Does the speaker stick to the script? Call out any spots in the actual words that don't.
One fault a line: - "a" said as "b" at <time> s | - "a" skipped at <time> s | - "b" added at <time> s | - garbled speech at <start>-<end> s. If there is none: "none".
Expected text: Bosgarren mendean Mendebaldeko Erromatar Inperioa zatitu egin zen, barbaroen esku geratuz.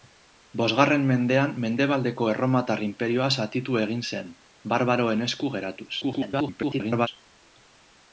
- garbled speech at 6.0-7.1 s